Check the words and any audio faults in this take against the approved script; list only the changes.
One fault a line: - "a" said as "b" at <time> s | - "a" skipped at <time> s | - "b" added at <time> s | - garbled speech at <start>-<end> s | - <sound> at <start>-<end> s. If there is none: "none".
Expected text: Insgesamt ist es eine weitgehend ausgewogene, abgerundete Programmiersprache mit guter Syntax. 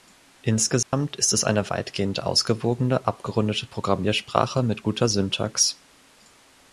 - dropout at 0.8-0.9 s